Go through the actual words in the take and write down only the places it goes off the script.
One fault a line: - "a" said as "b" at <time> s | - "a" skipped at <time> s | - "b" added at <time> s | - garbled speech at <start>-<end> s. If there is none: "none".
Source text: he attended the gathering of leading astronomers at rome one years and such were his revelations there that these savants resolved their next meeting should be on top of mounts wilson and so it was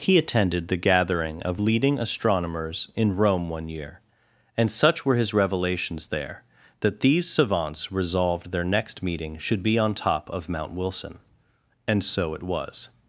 - "at" said as "in" at 3.0 s
- "years" said as "year" at 3.7 s
- "mounts" said as "mount" at 10.5 s